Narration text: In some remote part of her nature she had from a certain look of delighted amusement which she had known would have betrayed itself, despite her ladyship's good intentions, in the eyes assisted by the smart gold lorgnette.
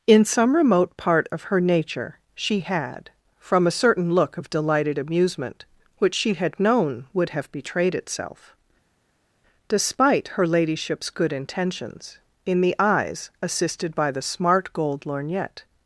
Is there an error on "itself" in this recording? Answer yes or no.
no